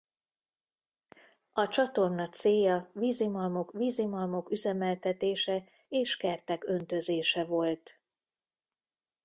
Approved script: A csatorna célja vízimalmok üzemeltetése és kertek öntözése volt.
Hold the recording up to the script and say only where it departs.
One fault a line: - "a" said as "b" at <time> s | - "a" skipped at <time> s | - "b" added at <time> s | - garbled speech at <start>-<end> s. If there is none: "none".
- "vízimalmok" added at 3.7 s